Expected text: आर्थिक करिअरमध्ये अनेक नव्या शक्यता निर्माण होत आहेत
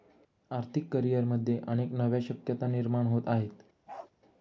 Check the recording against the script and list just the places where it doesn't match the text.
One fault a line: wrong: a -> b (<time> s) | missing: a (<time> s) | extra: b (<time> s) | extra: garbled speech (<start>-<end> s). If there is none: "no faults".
no faults